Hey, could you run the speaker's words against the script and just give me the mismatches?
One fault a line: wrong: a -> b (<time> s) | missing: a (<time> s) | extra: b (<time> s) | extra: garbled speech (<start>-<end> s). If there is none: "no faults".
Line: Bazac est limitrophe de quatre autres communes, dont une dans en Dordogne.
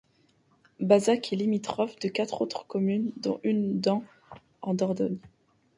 no faults